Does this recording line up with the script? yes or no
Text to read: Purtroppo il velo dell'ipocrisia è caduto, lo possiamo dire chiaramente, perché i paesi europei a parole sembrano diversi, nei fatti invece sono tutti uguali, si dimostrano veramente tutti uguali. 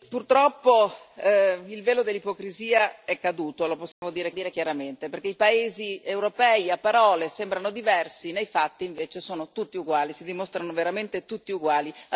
no